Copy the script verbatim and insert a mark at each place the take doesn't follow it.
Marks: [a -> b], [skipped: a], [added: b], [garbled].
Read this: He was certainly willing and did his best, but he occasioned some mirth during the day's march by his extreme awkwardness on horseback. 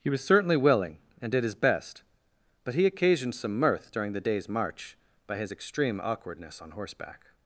He was certainly willing and did his best, but he occasioned some mirth during the day's march by his extreme awkwardness on horseback.